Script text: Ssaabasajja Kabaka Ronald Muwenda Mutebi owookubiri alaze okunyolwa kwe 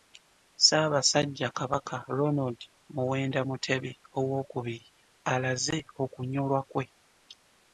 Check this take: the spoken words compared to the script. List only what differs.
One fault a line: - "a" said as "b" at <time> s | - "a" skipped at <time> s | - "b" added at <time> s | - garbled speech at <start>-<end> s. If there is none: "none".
none